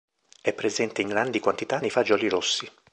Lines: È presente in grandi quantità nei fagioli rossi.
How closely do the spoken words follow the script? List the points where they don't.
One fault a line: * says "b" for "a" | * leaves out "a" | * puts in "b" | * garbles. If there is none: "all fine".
all fine